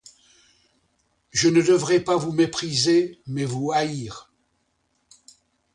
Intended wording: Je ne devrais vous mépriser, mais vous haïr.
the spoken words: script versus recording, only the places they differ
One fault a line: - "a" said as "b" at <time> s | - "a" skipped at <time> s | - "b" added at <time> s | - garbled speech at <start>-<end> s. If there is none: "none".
- "pas" added at 2.0 s